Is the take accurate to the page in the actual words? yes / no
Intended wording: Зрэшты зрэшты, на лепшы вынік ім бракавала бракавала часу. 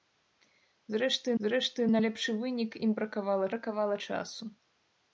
yes